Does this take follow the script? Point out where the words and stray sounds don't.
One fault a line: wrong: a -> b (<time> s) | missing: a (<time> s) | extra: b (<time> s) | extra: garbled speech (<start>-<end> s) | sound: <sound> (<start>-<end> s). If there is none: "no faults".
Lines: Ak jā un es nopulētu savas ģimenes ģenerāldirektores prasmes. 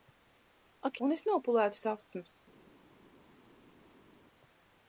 missing: jā (1.0 s)
missing: savas ģimenes ģenerāldirektores (1.8 s)